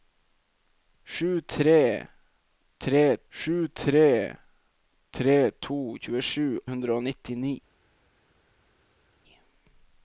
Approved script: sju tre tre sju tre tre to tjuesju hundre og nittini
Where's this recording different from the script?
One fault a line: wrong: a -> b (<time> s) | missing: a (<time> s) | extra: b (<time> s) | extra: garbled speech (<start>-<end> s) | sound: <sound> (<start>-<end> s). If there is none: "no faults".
no faults